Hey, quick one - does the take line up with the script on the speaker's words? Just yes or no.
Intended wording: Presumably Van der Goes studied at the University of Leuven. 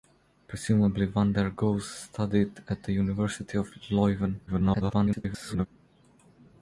no